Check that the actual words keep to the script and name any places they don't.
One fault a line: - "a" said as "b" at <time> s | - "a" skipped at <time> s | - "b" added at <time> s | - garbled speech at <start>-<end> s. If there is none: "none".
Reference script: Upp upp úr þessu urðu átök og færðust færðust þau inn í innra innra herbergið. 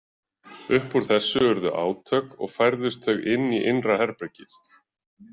- "upp" skipped at 0.9 s
- "færðust" skipped at 3.1 s
- "innra" skipped at 4.0 s